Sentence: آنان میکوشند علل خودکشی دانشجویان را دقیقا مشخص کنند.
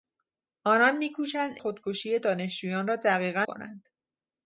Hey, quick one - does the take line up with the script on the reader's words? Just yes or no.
no